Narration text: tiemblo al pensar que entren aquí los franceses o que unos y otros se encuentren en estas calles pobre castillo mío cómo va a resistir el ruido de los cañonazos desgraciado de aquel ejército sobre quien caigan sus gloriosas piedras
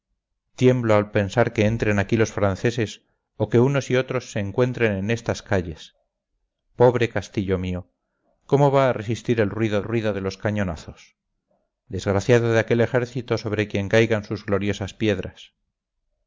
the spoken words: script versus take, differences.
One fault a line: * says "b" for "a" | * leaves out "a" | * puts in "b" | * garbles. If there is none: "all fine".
* puts in "ruido"